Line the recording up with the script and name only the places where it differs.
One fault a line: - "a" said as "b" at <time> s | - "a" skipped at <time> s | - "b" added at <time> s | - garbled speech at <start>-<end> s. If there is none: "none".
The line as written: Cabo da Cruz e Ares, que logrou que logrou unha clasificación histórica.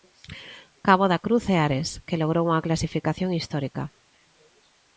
- "que logrou" skipped at 2.4 s